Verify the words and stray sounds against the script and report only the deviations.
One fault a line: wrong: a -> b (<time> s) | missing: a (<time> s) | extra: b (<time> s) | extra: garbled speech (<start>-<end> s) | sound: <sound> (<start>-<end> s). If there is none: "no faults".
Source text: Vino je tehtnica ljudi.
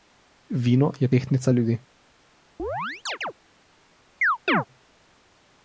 sound: chirp (2.6-3.3 s)
sound: chirp (4.2-4.6 s)